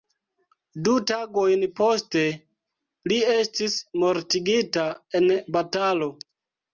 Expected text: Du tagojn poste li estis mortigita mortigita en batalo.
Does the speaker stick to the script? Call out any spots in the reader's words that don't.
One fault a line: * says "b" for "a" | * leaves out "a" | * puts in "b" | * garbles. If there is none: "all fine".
* leaves out "mortigita"